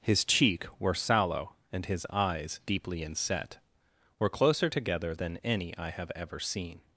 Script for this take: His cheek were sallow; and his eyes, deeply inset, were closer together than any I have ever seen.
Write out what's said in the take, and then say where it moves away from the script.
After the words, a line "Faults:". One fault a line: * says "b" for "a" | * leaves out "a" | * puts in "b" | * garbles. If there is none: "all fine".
His cheek were sallow; and his eyes, deeply inset, were closer together than any I have ever seen.
Faults:
all fine